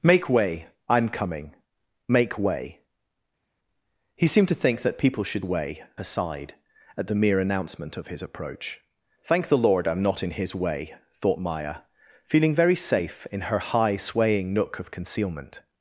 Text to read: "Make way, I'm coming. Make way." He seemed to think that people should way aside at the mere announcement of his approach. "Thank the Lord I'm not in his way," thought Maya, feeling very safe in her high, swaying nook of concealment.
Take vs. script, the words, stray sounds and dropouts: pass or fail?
pass